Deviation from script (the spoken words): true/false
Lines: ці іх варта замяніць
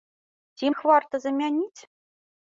false